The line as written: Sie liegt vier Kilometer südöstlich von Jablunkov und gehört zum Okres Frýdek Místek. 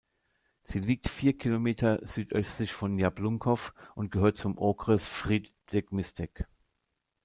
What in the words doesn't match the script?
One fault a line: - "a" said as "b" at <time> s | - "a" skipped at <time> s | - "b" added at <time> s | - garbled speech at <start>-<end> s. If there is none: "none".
none